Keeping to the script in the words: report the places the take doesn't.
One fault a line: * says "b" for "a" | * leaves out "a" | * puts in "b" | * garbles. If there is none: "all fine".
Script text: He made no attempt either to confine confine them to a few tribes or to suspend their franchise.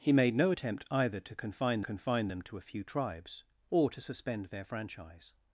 all fine